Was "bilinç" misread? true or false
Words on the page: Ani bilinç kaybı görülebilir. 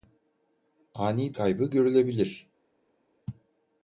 true